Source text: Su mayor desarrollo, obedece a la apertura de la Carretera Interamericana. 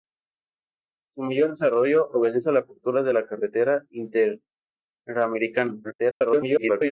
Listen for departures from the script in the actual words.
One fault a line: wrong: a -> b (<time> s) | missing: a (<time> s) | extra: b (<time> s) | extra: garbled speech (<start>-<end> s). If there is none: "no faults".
extra: garbled speech (5.8-6.9 s)